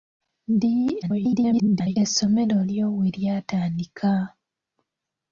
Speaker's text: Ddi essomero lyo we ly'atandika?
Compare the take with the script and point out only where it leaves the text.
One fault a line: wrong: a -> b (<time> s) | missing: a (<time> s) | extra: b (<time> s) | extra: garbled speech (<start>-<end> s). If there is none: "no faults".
extra: garbled speech (1.0-2.0 s)